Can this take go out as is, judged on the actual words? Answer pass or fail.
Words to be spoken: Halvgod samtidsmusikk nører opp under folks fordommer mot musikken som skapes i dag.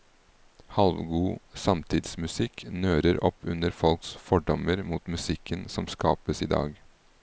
pass